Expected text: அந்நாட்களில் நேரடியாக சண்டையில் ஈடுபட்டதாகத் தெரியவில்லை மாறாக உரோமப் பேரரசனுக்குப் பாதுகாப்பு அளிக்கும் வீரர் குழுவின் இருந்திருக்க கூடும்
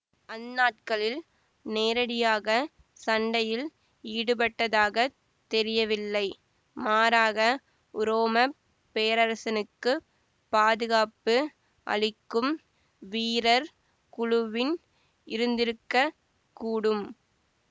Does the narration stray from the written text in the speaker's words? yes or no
no